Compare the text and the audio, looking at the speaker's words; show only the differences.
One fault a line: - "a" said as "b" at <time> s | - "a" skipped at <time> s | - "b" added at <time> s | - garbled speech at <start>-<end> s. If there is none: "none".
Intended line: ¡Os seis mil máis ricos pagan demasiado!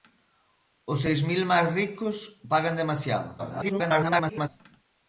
- garbled speech at 3.4-4.5 s